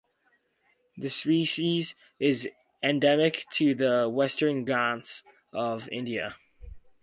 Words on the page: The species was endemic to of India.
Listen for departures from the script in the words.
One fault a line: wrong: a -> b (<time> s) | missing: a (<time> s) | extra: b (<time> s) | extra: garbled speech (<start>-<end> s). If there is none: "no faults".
wrong: was -> is (2.2 s)
extra: the Western Ghats (3.8 s)